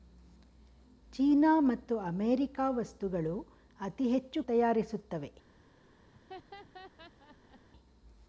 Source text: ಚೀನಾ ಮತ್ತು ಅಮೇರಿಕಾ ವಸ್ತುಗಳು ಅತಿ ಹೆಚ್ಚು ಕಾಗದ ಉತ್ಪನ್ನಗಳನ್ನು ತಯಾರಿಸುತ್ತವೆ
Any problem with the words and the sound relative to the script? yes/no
yes